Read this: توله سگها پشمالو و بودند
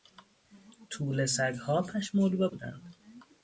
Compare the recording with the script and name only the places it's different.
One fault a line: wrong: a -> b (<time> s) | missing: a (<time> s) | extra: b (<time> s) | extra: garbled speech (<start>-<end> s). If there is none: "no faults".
no faults